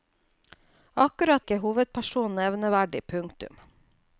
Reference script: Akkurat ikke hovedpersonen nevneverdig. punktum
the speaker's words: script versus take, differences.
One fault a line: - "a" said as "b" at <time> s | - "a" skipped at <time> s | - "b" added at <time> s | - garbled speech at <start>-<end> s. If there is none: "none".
none